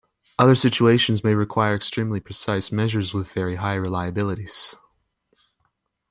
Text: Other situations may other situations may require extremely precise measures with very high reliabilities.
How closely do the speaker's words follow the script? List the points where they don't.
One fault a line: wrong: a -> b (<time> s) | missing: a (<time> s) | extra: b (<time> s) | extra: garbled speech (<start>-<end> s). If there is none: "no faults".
missing: other situations may (1.4 s)